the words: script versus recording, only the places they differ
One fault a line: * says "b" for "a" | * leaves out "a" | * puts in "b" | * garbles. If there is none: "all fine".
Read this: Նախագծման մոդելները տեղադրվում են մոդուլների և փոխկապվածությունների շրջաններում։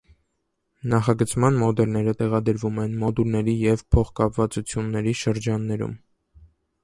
all fine